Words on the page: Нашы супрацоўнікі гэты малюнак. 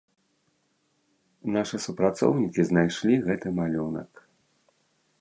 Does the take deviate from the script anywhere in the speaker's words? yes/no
yes